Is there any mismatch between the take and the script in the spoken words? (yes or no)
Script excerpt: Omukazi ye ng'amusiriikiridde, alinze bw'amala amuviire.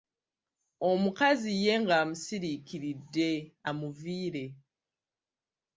yes